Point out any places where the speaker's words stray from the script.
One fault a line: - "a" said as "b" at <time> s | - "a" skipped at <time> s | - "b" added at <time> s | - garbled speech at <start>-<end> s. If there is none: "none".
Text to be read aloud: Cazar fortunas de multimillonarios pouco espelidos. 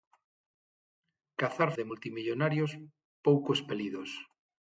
- "fortunas" skipped at 1.7 s